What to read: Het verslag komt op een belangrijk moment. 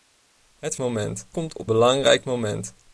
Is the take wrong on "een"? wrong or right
wrong